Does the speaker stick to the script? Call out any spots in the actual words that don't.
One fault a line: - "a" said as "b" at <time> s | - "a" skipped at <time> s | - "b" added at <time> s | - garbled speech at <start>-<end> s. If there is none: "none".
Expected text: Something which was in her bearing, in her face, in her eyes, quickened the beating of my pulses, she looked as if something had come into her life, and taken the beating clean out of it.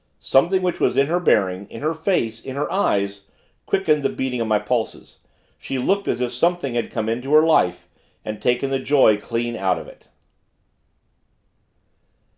- "beating" said as "joy" at 8.8 s